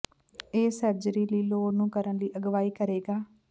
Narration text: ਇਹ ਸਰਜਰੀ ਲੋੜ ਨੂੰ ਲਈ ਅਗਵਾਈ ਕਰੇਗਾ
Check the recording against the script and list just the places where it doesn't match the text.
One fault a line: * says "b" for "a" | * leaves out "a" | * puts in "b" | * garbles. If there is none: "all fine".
* puts in "ਲਈ"
* puts in "ਕਰਨ"